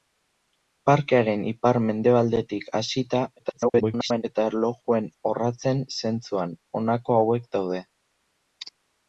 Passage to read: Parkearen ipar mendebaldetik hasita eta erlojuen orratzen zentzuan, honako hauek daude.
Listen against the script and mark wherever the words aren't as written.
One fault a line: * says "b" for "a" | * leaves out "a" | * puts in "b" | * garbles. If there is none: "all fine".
* garbles